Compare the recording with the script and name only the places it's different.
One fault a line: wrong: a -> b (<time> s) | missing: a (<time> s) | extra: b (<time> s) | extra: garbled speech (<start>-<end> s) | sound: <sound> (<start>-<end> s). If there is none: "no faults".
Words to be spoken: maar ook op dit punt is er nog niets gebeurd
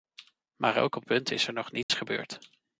missing: dit (1.1 s)
sound: dropout (1.8-1.9 s)